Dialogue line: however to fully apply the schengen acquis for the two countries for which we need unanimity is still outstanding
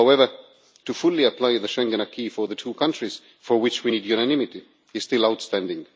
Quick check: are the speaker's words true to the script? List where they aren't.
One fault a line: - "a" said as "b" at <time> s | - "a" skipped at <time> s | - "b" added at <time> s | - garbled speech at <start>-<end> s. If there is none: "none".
none